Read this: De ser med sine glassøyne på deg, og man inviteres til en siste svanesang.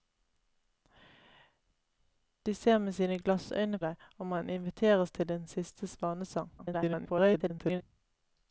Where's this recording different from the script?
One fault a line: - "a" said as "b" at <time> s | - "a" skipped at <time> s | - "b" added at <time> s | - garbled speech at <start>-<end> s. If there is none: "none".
- "på" skipped at 3.8 s
- garbled speech at 6.6-7.8 s